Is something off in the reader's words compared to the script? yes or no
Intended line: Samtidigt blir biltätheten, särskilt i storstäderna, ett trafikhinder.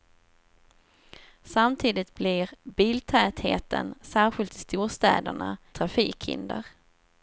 yes